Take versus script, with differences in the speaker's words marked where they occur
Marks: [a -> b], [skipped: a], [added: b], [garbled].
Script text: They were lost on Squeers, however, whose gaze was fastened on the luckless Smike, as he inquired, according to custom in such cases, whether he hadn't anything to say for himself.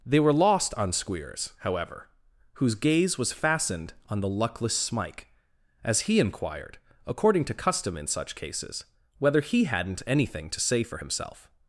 They were lost on Squeers, however, whose gaze was fastened on the luckless Smike, as he inquired, according to custom in such cases, whether he hadn't anything to say for himself.